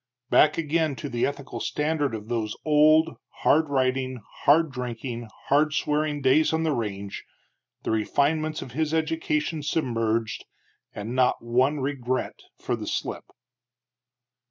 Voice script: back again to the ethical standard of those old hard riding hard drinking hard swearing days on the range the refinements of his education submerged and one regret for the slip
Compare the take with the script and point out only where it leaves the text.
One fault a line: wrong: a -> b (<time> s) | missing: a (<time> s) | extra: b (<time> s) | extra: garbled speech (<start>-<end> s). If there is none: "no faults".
extra: not (11.2 s)